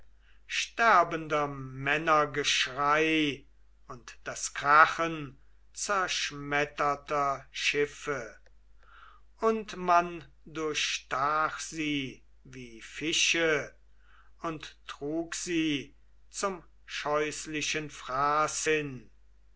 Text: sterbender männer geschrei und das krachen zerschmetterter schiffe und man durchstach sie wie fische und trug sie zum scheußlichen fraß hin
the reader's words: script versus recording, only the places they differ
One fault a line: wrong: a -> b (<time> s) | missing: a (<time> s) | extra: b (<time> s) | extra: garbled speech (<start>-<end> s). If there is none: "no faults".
no faults